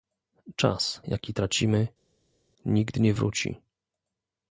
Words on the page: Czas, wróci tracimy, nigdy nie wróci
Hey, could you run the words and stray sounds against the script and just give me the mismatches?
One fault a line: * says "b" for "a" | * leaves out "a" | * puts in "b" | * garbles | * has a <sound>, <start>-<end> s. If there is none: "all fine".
* says "jaki" for "wróci"